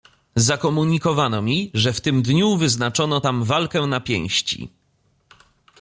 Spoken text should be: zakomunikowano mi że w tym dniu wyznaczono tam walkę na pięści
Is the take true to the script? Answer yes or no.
yes